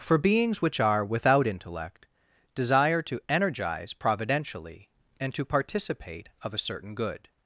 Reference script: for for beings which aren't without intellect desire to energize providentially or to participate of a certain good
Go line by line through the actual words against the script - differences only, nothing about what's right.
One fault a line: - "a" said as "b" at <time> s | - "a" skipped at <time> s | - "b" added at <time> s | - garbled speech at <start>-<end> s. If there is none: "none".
- "for" skipped at 0.2 s
- "aren't" said as "are" at 0.8 s
- "or" said as "and" at 5.2 s